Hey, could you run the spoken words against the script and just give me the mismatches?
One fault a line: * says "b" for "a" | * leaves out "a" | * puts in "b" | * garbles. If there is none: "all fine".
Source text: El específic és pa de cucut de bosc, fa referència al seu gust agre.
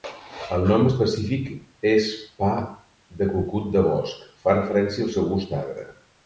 * puts in "nom"